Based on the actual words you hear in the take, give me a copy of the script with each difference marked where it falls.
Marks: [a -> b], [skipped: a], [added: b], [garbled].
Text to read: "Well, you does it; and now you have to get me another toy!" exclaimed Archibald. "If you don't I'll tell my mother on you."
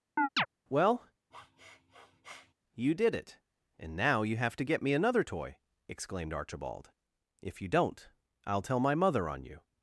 "Well, you [does -> did] it; and now you have to get me another toy!" exclaimed Archibald. "If you don't I'll tell my mother on you."